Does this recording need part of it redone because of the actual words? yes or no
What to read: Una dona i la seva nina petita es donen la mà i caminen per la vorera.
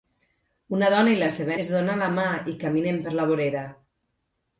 yes